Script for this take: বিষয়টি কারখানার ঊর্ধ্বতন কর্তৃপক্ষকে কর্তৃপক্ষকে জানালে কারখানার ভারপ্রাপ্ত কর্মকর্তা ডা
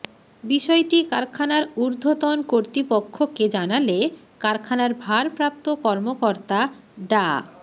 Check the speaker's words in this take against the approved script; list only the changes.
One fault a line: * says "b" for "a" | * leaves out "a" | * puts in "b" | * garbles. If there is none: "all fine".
* leaves out "কর্তৃপক্ষকে"